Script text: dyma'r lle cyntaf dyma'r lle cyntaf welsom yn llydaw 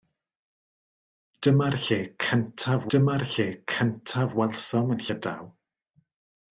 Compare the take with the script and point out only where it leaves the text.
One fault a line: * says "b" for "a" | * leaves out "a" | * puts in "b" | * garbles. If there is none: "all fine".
all fine